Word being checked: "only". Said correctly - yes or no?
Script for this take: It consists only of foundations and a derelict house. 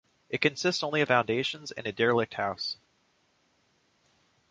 yes